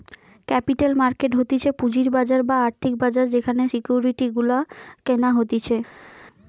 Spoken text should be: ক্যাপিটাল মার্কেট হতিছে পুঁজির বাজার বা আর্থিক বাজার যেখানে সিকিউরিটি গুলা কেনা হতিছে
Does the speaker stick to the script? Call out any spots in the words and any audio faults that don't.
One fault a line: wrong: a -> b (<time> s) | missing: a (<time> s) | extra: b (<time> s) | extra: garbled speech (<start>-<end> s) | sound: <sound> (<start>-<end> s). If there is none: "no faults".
no faults